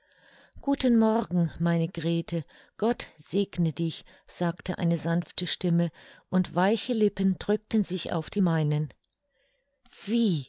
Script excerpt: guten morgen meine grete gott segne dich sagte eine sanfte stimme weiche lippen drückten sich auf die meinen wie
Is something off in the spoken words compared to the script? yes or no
yes